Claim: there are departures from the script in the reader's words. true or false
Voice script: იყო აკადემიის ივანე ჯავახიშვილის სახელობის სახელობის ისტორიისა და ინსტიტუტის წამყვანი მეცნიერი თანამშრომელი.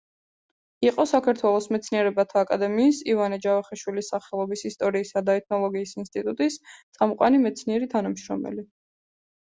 true